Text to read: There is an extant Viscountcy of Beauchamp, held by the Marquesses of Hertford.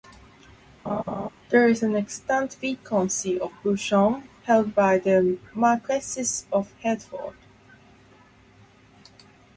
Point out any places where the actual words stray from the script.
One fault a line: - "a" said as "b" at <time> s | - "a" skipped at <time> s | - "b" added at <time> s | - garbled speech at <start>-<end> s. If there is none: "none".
none